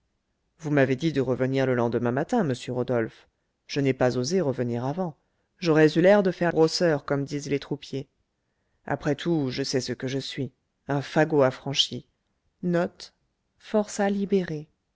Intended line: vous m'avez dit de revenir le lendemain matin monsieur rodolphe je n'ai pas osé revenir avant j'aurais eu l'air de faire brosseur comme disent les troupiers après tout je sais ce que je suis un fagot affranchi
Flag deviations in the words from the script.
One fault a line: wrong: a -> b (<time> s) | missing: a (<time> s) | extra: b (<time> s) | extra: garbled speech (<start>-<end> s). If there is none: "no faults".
no faults